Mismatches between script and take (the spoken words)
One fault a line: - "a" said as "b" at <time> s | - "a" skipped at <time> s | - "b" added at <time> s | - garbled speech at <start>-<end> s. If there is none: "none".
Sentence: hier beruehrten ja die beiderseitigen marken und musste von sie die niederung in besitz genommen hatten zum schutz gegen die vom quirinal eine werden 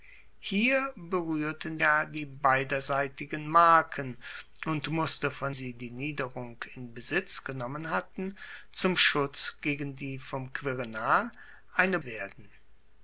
none